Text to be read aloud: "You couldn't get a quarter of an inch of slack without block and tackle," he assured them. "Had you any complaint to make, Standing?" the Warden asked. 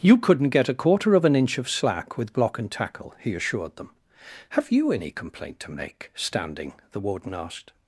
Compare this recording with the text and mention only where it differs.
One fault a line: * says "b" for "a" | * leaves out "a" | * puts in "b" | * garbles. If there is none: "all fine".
* says "with" for "without"
* says "Have" for "Had"